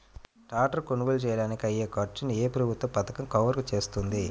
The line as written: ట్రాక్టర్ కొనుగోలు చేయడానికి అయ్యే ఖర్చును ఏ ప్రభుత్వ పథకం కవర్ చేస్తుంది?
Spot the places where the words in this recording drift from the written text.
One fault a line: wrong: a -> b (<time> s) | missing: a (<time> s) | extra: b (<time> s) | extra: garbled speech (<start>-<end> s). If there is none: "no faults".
no faults